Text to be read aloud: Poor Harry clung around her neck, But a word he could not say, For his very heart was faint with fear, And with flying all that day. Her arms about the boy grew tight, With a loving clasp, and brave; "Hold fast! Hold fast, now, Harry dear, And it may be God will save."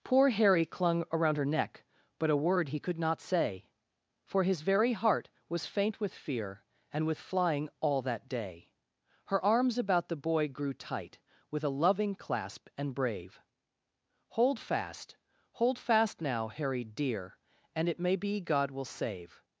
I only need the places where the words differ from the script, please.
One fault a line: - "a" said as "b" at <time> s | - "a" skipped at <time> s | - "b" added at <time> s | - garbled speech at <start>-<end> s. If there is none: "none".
none